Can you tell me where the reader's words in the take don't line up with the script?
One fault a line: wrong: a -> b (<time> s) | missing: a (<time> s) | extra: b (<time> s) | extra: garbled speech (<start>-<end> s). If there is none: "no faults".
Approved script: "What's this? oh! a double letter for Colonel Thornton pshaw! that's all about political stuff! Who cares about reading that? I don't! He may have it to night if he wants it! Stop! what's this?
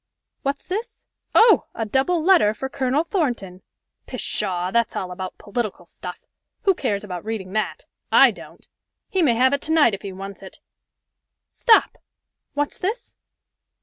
no faults